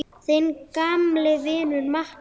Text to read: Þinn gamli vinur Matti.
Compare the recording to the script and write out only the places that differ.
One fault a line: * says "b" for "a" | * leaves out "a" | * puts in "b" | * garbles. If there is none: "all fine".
all fine